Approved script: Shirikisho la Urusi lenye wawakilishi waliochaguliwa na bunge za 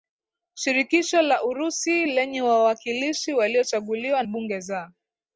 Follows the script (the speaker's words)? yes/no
no